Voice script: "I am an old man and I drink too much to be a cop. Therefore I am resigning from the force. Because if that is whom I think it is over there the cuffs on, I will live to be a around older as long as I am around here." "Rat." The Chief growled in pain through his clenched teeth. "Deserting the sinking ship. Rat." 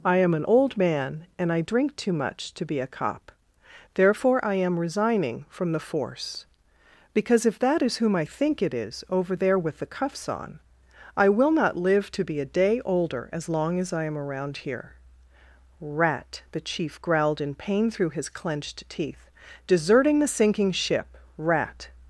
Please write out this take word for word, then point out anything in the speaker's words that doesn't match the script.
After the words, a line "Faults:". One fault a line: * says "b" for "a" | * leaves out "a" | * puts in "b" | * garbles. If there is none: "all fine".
"I am an old man and I drink too much to be a cop. Therefore I am resigning from the force. Because if that is whom I think it is over there with the cuffs on, I will not live to be a day older as long as I am around here." "Rat." The Chief growled in pain through his clenched teeth. "Deserting the sinking ship. Rat."
Faults:
* puts in "with"
* puts in "not"
* says "day" for "around"